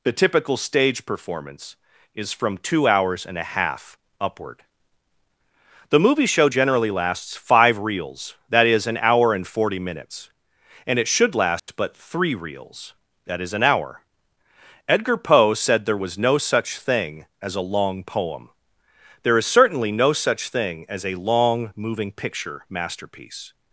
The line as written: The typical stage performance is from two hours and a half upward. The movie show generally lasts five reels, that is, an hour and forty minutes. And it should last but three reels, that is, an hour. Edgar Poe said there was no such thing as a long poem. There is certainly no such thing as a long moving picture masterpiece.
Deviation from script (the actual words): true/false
false